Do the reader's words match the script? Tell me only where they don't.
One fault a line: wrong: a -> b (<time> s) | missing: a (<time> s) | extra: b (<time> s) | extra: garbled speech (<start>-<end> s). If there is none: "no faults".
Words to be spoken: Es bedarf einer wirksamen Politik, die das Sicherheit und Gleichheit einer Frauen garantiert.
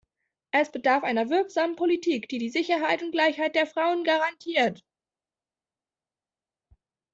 wrong: das -> die (2.4 s)
wrong: einer -> der (3.5 s)